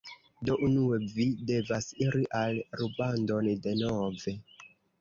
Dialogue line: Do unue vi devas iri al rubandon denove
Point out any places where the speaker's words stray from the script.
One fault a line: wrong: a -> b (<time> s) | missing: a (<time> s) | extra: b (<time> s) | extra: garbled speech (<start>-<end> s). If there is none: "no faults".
no faults